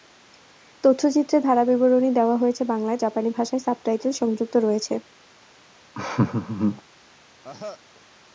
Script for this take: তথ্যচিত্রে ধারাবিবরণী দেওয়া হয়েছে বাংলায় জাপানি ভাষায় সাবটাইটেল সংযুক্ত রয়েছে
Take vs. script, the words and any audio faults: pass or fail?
fail